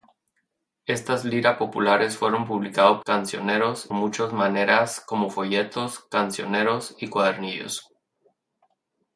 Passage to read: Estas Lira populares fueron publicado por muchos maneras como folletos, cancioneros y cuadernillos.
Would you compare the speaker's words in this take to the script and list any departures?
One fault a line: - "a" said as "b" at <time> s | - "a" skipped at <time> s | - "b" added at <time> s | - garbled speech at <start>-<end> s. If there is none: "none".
- "por" said as "cancioneros" at 3.0 s